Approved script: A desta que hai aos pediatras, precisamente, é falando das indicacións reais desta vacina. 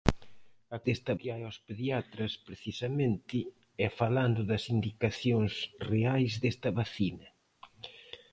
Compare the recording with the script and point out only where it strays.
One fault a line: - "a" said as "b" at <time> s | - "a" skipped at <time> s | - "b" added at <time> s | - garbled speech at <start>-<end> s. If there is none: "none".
none